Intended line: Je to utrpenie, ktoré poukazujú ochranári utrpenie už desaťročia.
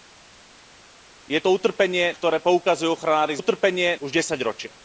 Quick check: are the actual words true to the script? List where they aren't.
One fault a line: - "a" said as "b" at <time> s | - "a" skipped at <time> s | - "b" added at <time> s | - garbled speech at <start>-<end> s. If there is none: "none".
none